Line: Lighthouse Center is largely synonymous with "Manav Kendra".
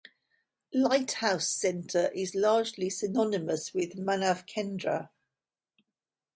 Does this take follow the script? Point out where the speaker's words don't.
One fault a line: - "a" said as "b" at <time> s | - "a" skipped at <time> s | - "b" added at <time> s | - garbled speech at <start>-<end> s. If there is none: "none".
none